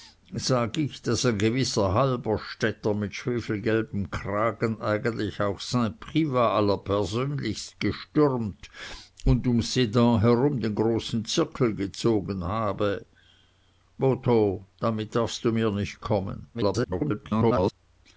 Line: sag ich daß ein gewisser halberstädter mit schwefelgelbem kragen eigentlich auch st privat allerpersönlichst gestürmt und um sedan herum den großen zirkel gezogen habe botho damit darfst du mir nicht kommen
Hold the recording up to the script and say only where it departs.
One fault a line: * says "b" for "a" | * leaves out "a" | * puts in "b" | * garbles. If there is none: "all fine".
* garbles